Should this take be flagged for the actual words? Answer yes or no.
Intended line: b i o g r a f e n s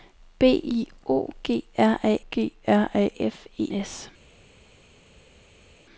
yes